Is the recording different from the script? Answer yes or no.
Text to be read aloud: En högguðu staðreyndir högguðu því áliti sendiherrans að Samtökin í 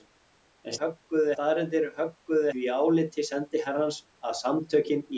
no